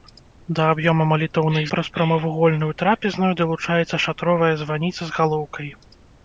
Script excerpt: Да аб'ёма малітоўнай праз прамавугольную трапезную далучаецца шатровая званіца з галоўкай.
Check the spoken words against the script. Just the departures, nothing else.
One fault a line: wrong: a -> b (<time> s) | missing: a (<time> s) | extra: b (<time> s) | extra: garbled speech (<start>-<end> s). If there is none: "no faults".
no faults